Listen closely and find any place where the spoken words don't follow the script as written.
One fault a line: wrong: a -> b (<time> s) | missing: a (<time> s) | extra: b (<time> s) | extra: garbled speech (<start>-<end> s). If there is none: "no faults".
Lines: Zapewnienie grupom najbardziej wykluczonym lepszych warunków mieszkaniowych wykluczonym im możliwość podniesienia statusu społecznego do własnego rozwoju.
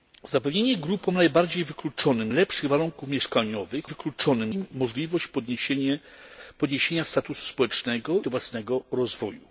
no faults